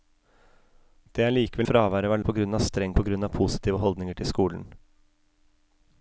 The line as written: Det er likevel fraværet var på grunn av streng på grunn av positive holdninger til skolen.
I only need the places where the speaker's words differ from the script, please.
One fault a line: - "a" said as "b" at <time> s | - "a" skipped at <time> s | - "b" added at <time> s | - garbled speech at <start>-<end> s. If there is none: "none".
none